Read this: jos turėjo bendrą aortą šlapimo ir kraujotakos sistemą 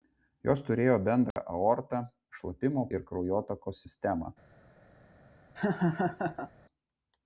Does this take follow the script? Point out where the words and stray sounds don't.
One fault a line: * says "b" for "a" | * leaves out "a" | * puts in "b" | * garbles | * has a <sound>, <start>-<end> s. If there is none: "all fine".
* has a dropout, 1.3-1.4 s
* has a laugh, 5.6-6.5 s